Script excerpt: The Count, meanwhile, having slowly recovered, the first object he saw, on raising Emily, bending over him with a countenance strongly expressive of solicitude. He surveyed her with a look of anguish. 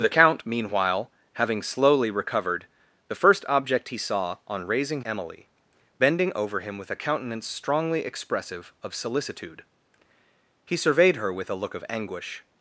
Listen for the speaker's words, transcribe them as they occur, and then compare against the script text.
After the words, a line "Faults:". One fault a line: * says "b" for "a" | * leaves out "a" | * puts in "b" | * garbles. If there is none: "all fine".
The Count, meanwhile, having slowly recovered, the first object he saw, on raising Emily, bending over him with a countenance strongly expressive of solicitude. He surveyed her with a look of anguish.
Faults:
all fine